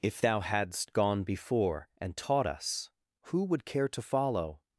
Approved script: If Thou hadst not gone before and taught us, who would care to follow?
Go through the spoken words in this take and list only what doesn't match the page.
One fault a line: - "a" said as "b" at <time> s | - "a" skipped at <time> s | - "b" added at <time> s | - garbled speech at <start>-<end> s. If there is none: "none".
- "not" skipped at 0.9 s